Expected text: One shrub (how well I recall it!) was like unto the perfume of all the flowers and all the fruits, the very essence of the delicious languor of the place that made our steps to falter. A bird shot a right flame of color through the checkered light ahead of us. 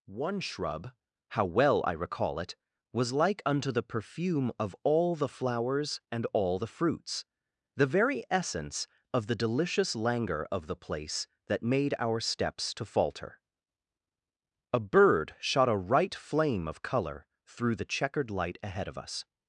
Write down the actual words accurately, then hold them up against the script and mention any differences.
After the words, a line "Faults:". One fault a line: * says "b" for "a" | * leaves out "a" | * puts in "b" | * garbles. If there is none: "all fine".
One shrub (how well I recall it!) was like unto the perfume of all the flowers and all the fruits, the very essence of the delicious languor of the place that made our steps to falter. A bird shot a right flame of color through the checkered light ahead of us.
Faults:
all fine